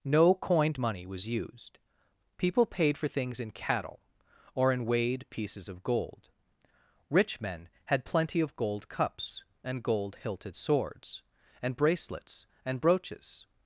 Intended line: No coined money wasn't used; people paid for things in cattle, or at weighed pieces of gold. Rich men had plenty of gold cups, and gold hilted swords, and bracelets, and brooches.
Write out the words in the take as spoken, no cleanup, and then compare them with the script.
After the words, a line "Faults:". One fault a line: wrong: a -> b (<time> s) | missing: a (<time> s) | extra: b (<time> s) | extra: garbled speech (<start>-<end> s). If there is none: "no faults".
No coined money was used; people paid for things in cattle, or in weighed pieces of gold. Rich men had plenty of gold cups, and gold hilted swords, and bracelets, and brooches.
Faults:
wrong: wasn't -> was (1.0 s)
wrong: at -> in (4.7 s)